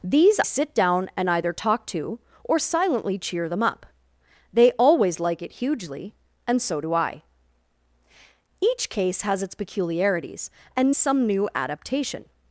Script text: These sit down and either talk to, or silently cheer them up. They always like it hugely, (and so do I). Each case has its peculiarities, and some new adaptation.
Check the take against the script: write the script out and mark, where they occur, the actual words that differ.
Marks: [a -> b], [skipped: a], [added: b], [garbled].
These sit down and either talk to, or silently cheer them up. They always like it hugely, (and so do I). Each case has its peculiarities, and some new adaptation.